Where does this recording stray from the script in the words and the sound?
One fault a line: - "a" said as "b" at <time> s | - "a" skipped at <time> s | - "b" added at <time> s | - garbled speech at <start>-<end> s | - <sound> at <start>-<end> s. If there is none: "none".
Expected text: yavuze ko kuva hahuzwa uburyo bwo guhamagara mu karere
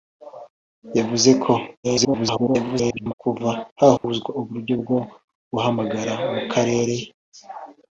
- garbled speech at 1.8-3.1 s
- dropout at 4.0-4.0 s